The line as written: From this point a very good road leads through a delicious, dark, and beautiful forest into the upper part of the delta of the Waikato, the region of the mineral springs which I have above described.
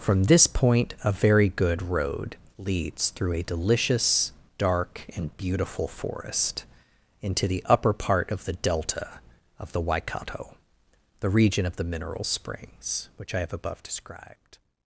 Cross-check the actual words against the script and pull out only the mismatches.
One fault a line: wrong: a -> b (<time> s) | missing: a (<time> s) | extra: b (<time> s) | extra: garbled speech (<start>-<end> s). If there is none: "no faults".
no faults